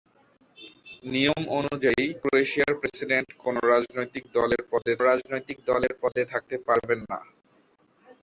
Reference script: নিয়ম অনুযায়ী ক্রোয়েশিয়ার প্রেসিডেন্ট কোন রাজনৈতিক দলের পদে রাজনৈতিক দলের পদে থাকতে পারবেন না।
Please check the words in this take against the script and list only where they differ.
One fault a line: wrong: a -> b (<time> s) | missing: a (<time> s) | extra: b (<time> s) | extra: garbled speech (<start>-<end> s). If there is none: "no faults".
no faults